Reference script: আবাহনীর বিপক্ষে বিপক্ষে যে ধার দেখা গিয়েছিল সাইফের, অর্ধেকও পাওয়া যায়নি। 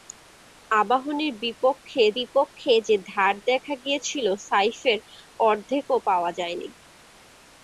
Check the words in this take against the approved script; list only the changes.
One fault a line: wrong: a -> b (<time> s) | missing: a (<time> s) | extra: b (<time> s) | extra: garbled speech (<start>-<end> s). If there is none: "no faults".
no faults